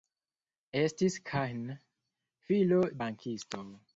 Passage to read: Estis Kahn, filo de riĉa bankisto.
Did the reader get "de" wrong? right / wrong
wrong